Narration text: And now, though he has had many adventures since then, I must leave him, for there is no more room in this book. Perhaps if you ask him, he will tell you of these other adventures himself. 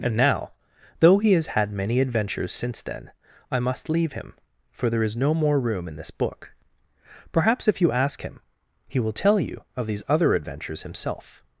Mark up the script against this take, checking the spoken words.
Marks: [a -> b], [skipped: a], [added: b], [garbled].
And now, though he has had many adventures since then, I must leave him, for there is no more room in this book. Perhaps if you ask him, he will tell you of these other adventures himself.